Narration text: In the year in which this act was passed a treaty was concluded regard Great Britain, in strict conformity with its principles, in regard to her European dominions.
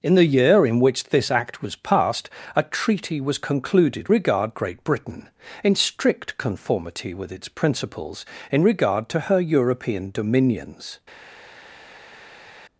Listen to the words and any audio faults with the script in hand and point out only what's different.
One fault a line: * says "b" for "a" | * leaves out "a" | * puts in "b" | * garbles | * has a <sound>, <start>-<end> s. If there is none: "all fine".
all fine